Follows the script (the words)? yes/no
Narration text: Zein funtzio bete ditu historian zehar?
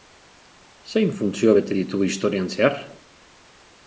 yes